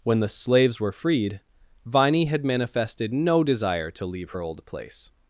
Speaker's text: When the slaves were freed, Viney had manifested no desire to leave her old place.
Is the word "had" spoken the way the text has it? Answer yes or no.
yes